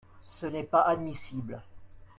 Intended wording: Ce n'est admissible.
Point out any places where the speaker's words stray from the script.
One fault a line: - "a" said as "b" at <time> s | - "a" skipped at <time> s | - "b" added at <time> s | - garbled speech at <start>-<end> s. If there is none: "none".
- "pas" added at 0.6 s